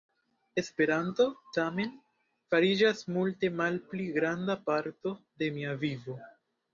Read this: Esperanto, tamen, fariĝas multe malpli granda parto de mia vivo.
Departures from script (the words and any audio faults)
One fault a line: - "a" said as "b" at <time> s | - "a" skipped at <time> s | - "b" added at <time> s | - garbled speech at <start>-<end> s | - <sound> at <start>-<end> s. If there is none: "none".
none